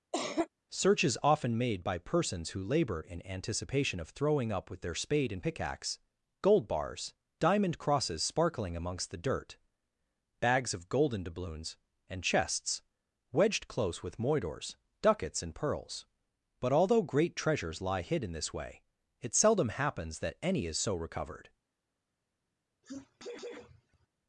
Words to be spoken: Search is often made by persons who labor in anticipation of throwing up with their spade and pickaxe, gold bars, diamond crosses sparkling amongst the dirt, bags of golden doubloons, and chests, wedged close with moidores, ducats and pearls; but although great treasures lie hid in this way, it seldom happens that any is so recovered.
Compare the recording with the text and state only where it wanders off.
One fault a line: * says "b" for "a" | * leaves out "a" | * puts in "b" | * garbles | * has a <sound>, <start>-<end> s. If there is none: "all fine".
* has a cough, 0.1-0.5 s
* has a sneeze, 22.8-24.1 s